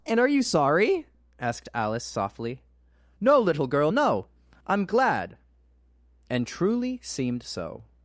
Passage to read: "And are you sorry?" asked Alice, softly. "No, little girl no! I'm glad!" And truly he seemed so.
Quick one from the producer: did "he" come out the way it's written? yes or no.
no